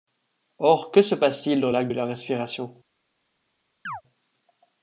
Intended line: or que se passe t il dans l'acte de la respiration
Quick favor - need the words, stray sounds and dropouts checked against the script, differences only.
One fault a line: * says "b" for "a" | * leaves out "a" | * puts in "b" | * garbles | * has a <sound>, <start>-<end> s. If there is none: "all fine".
* has a chirp, 3.9-4.0 s